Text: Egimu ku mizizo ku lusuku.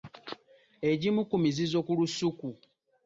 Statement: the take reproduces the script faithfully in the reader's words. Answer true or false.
true